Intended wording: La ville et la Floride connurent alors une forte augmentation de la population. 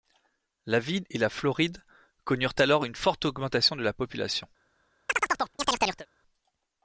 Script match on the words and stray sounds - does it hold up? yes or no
no